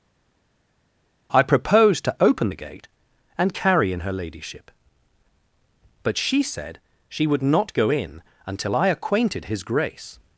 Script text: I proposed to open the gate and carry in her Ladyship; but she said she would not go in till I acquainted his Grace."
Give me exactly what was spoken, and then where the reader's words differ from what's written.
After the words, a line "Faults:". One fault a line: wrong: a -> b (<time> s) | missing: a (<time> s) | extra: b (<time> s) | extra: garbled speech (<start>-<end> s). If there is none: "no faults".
I proposed to open the gate and carry in her Ladyship; but she said she would not go in until I acquainted his Grace."
Faults:
wrong: till -> until (8.5 s)